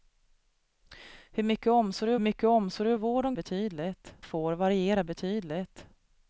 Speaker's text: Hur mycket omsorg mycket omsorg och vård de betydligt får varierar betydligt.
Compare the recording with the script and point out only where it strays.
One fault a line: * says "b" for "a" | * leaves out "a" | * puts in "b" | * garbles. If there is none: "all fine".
all fine